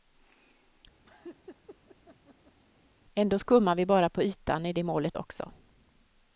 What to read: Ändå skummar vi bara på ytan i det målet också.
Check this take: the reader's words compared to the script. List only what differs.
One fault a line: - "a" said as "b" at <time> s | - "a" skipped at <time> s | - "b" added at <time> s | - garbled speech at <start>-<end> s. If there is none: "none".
none